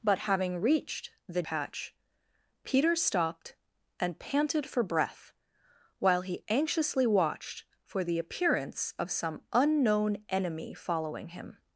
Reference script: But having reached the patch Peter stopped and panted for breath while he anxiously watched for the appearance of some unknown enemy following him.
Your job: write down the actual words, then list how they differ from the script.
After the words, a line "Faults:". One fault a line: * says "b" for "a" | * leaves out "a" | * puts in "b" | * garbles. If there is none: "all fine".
But having reached the patch Peter stopped and panted for breath while he anxiously watched for the appearance of some unknown enemy following him.
Faults:
all fine